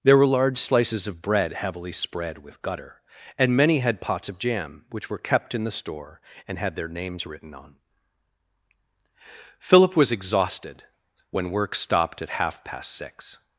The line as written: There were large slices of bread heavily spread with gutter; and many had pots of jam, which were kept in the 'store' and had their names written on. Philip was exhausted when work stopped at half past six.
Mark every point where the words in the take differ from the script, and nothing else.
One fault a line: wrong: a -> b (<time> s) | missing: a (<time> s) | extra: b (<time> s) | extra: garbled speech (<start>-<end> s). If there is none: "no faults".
no faults